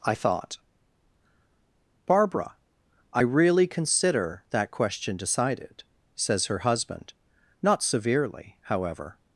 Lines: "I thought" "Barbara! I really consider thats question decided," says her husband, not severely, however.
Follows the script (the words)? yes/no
no